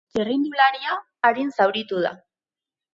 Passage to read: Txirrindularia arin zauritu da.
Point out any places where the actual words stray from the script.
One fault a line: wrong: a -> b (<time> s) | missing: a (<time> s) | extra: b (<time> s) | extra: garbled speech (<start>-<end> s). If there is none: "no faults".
no faults